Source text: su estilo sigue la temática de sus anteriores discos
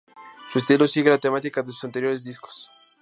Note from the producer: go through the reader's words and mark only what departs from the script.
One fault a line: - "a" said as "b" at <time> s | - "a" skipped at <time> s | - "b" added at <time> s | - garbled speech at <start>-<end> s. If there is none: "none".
none